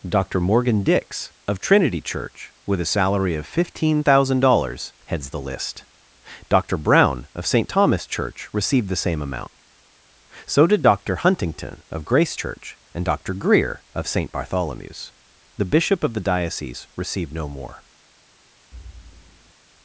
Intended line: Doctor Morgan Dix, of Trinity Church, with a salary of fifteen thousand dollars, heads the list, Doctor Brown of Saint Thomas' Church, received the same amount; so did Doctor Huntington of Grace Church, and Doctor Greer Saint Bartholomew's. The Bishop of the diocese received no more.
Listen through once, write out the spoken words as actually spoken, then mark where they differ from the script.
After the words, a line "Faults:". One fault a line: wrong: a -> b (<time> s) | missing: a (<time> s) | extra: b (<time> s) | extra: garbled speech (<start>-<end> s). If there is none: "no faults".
Doctor Morgan Dix, of Trinity Church, with a salary of fifteen thousand dollars, heads the list, Doctor Brown of Saint Thomas' Church, received the same amount; so did Doctor Huntington of Grace Church, and Doctor Greer of Saint Bartholomew's. The Bishop of the diocese received no more.
Faults:
extra: of (13.9 s)